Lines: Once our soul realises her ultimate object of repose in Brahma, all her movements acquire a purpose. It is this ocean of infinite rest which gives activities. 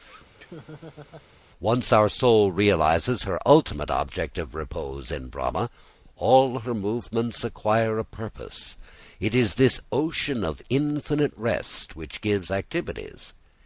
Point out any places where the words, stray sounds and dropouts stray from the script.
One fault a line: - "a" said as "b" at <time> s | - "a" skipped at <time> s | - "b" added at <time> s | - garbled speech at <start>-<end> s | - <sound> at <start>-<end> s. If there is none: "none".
- laugh at 0.4-1.3 s